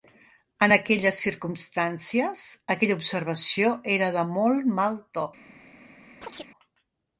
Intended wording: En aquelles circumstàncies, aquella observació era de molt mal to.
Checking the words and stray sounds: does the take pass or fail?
fail